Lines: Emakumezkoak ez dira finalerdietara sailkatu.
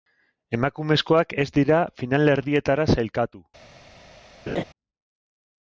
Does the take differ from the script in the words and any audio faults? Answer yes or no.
yes